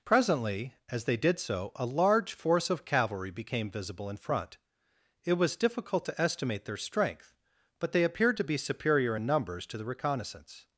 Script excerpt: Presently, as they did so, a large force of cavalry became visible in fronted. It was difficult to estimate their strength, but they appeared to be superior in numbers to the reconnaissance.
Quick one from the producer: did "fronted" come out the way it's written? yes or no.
no